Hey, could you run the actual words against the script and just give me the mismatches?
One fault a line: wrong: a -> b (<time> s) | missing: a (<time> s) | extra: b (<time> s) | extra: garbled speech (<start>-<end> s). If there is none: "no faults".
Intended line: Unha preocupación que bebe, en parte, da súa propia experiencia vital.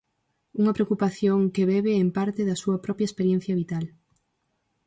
no faults